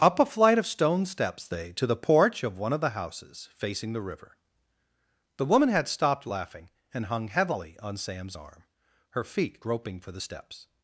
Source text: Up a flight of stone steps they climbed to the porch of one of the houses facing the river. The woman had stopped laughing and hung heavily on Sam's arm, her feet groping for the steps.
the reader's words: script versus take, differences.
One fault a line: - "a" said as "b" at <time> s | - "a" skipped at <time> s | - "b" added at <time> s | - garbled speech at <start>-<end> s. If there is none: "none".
- "climbed" skipped at 1.7 s